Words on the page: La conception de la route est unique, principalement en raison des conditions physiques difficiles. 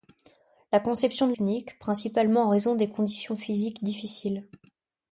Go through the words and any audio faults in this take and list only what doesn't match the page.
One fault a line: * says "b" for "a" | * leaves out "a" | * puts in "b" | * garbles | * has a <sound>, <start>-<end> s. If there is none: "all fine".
* leaves out "la route est"